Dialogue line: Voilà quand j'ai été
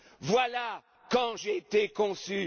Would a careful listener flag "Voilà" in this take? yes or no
no